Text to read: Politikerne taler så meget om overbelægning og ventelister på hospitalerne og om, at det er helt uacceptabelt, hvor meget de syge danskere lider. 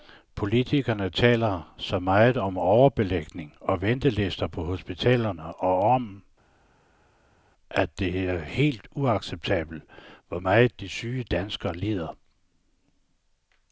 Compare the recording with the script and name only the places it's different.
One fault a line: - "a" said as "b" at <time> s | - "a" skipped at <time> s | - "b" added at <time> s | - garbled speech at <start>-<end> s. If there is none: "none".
none